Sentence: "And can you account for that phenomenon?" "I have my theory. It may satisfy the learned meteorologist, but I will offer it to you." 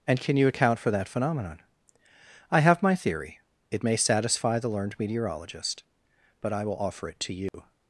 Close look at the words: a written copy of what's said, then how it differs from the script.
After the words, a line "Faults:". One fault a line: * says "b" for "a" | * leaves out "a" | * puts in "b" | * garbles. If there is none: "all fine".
"And can you account for that phenomenon?" "I have my theory. It may satisfy the learned meteorologist, but I will offer it to you."
Faults:
all fine